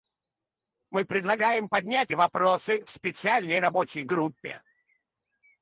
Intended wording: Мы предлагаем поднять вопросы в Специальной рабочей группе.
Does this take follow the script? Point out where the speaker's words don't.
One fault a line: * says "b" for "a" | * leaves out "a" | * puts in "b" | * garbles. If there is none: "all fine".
all fine